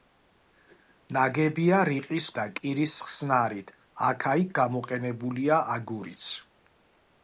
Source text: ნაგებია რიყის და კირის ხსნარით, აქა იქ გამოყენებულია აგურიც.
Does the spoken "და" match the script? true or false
true